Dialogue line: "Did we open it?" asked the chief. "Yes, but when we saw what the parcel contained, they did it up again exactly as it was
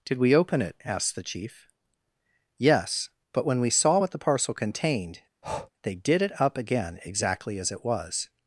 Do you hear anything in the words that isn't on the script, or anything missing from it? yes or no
no